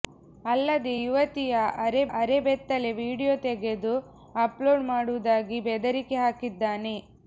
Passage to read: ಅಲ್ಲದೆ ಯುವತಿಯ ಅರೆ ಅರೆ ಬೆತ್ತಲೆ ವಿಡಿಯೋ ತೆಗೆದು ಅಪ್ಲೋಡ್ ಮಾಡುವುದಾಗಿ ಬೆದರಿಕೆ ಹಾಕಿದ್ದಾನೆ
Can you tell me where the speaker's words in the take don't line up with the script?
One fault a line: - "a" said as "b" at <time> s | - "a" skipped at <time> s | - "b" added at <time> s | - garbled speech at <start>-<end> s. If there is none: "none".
none